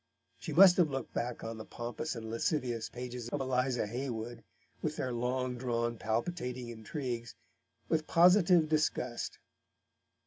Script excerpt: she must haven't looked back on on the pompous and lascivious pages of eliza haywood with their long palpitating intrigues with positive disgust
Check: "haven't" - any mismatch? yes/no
yes